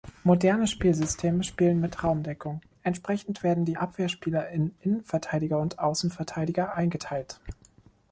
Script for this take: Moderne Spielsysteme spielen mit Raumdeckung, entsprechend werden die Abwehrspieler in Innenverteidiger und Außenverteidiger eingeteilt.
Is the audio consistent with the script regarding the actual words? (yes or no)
yes